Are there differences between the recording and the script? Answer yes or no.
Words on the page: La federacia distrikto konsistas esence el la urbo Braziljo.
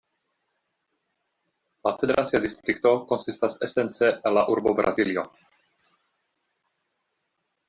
no